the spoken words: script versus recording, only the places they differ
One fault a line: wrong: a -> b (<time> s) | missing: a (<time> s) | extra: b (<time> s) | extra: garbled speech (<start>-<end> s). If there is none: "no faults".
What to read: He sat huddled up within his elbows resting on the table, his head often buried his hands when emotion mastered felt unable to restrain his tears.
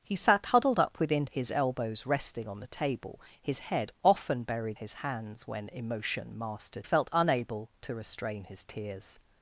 no faults